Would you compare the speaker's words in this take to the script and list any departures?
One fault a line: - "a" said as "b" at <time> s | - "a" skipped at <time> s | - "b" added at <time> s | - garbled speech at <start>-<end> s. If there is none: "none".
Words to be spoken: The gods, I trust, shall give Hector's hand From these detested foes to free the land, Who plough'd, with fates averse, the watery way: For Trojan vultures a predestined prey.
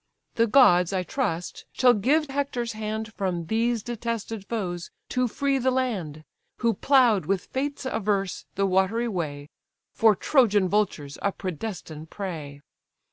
none